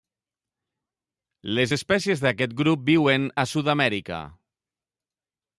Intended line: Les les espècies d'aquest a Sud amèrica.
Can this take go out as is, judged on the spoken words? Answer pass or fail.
fail